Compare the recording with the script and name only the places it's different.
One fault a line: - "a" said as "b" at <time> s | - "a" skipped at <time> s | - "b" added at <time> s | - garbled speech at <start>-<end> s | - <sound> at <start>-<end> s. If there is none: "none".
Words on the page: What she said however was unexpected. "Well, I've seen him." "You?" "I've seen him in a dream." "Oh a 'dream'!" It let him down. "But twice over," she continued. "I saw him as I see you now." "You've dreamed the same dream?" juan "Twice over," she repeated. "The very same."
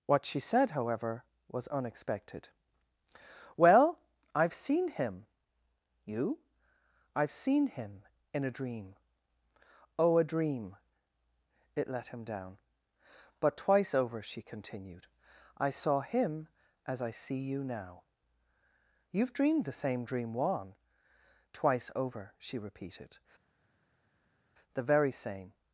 none